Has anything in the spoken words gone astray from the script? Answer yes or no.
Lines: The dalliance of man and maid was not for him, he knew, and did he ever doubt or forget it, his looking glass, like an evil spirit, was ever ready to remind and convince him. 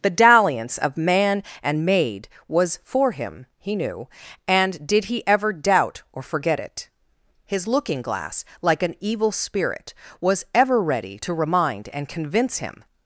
yes